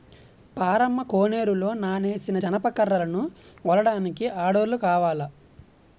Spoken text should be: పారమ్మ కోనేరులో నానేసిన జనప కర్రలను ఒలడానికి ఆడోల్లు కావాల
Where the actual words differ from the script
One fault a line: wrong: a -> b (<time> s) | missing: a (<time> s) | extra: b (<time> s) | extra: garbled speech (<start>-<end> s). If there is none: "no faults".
no faults